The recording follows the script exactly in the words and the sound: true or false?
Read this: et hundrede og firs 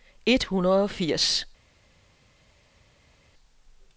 true